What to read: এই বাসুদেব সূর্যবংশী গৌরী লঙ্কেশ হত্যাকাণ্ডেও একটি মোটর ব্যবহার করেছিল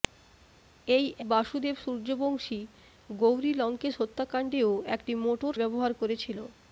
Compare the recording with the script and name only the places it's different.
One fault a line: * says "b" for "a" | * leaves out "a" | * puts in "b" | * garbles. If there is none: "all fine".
all fine